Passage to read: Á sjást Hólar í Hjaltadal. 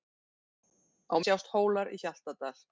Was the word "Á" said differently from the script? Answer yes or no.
no